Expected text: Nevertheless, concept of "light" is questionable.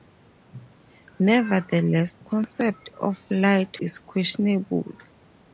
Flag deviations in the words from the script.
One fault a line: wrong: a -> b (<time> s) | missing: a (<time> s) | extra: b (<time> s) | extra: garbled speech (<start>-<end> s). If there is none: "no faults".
no faults